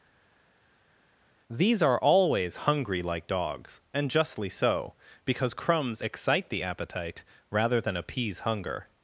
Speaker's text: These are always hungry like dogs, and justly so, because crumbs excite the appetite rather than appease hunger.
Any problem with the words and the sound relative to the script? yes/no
no